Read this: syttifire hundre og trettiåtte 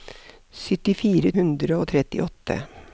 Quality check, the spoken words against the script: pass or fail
pass